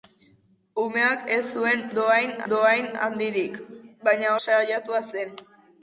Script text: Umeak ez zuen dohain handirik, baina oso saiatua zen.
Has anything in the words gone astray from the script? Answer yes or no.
yes